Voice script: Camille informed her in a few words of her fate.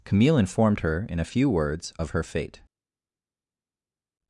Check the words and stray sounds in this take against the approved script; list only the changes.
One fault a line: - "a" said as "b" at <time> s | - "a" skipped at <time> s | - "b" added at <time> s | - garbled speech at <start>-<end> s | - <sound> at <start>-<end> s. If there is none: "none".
none